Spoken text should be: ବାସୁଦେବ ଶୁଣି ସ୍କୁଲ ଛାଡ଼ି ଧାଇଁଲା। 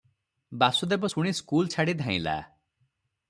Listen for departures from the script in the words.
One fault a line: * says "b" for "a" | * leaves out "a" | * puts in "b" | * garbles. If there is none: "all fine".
all fine